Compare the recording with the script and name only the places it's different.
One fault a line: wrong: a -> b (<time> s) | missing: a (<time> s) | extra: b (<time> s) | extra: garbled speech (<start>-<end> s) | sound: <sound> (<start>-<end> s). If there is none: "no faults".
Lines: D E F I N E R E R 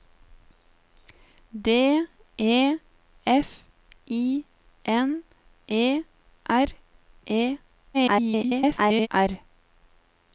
extra: garbled speech (7.9-9.1 s)